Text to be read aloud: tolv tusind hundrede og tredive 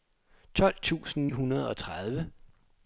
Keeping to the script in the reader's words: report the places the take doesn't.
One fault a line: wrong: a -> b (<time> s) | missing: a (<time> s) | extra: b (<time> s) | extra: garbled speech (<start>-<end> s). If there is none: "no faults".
no faults